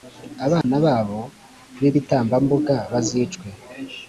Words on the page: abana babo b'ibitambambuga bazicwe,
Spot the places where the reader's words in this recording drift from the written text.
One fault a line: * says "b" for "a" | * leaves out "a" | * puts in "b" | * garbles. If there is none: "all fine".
all fine